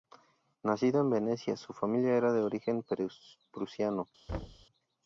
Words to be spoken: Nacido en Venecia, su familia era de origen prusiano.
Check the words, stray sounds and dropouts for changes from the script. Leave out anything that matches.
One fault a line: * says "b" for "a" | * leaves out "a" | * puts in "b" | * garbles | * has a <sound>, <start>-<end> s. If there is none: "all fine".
* has a thud, 4.3-4.7 s